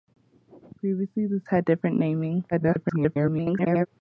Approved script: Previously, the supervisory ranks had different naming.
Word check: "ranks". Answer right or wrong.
wrong